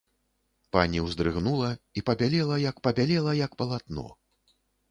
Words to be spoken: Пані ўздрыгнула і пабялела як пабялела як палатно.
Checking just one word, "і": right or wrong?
right